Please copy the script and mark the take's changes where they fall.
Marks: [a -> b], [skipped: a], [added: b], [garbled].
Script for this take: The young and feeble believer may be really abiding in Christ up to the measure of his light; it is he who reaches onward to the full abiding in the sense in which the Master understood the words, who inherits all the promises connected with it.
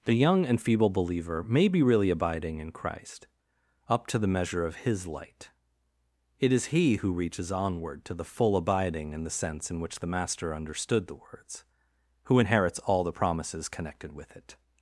The young and feeble believer may be really abiding in Christ up to the measure of his light; it is he who reaches onward to the full abiding in the sense in which the Master understood the words, who inherits all the promises connected with it.